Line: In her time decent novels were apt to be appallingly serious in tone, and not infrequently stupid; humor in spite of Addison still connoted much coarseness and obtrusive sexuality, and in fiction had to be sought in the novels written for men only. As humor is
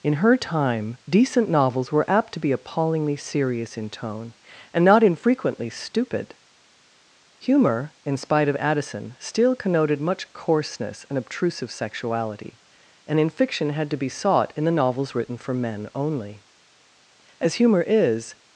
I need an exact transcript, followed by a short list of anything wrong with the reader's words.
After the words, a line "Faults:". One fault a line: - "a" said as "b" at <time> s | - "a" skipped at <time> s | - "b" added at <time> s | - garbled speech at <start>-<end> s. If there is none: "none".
In her time decent novels were apt to be appallingly serious in tone, and not infrequently stupid; humor in spite of Addison still connoted much coarseness and obtrusive sexuality, and in fiction had to be sought in the novels written for men only. As humor is
Faults:
none